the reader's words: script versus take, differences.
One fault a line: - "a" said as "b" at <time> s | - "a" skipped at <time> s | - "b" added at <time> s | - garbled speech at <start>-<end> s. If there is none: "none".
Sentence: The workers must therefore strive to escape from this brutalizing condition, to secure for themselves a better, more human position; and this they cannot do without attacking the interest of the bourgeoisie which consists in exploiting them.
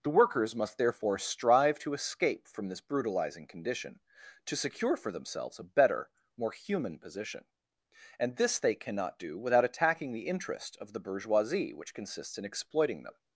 none